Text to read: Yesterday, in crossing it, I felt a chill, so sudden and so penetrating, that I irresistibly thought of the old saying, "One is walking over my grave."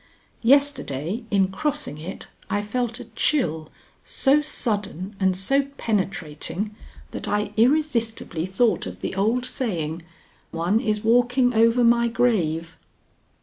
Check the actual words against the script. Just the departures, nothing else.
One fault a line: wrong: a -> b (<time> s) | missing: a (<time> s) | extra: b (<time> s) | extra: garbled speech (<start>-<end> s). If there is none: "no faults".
no faults